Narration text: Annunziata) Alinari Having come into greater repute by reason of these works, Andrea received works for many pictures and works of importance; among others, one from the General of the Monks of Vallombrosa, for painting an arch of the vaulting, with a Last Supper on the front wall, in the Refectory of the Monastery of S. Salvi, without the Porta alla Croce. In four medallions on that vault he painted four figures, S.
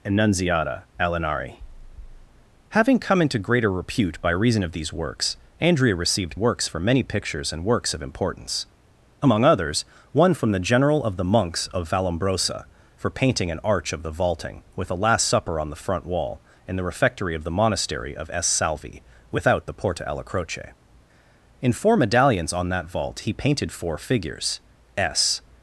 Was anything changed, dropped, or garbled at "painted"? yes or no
no